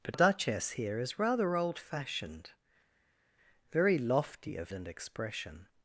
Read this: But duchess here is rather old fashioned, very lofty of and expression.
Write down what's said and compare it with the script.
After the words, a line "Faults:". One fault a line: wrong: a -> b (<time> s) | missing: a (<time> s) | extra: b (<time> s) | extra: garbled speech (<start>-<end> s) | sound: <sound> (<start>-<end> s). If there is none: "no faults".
But duchess here is rather old fashioned, very lofty of and expression.
Faults:
no faults